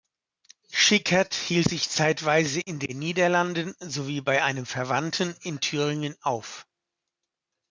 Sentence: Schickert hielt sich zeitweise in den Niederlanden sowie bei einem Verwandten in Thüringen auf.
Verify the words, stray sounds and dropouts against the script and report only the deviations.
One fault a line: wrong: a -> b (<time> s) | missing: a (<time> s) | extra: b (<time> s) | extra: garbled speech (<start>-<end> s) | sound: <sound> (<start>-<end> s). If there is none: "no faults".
no faults